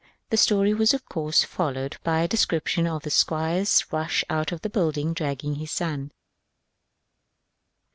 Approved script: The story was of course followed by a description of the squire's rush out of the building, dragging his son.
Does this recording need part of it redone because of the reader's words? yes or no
no